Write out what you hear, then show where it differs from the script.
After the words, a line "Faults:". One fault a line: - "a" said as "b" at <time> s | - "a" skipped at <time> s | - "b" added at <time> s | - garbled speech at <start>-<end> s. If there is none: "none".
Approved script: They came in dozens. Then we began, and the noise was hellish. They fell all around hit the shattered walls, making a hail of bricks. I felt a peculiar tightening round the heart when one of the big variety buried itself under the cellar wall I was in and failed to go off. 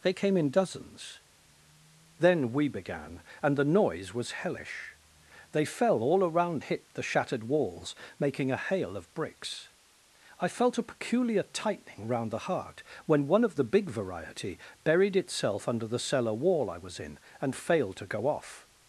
They came in dozens. Then we began, and the noise was hellish. They fell all around hit the shattered walls, making a hail of bricks. I felt a peculiar tightening round the heart when one of the big variety buried itself under the cellar wall I was in and failed to go off.
Faults:
none